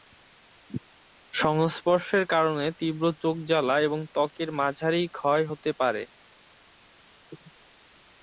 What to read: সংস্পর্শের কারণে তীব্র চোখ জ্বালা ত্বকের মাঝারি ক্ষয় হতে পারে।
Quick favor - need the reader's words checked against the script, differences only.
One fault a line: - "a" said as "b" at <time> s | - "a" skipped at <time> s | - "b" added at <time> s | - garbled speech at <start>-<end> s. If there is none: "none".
- "এবং" added at 3.8 s